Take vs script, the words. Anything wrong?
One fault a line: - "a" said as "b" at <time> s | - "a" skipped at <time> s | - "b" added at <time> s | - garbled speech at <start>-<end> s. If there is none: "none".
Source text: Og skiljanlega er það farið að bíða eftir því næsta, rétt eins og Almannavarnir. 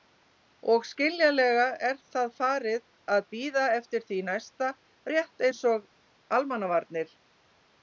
none